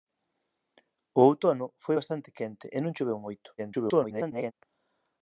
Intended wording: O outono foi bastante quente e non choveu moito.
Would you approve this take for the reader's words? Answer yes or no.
no